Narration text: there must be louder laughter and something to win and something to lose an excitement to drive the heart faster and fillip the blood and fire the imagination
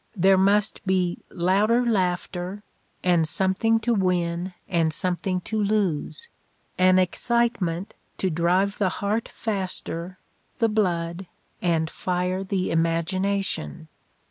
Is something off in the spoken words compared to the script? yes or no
yes